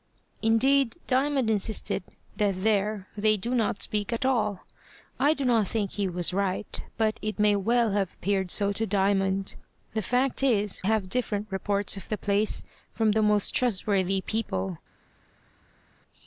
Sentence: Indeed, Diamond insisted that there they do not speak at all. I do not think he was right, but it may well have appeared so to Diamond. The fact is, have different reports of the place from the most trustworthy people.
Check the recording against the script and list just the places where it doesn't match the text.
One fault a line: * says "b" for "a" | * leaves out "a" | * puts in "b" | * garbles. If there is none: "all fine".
all fine